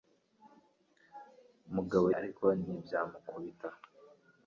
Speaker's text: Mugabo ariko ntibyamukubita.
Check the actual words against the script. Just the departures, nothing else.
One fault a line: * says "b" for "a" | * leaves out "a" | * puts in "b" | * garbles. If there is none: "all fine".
all fine